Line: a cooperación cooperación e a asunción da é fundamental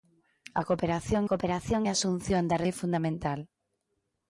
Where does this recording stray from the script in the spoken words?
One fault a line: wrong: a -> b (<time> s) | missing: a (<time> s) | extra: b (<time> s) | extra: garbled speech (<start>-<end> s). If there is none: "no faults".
no faults